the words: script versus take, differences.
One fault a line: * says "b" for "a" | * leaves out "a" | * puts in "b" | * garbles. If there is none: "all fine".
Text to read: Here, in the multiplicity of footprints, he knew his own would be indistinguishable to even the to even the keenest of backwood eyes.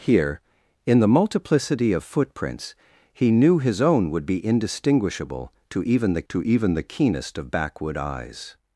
all fine